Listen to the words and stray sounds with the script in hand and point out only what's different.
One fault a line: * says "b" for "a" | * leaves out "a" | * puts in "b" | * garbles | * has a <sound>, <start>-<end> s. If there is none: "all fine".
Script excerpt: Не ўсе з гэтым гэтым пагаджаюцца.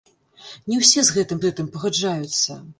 all fine